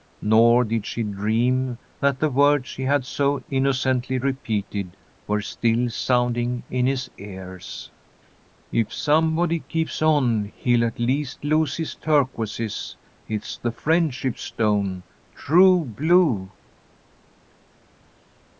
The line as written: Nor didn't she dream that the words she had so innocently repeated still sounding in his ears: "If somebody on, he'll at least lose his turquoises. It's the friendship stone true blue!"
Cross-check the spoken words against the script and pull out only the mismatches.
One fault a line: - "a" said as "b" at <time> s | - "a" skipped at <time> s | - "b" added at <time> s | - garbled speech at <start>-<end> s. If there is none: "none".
- "didn't" said as "did" at 0.6 s
- "were" added at 5.3 s
- "keeps" added at 9.6 s